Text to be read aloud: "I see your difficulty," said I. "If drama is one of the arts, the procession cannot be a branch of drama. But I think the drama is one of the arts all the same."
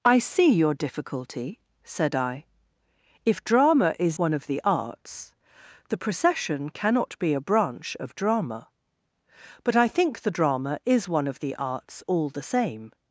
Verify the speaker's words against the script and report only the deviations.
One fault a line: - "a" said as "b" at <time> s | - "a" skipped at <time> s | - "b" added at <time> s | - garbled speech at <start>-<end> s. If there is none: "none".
none